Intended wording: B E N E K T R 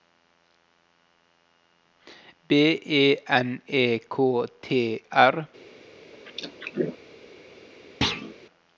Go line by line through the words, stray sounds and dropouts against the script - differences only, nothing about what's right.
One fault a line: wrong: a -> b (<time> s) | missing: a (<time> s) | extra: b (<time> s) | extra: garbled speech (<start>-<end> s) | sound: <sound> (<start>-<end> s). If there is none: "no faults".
sound: throat clearing (6.1-7.0 s)
sound: thud (8.0-8.3 s)